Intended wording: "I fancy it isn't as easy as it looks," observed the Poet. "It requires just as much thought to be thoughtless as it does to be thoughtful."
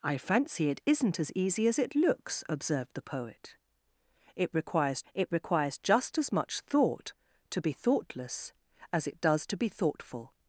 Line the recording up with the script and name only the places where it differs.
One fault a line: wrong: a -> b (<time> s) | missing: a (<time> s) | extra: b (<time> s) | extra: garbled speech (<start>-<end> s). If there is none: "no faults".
extra: it requires (5.1 s)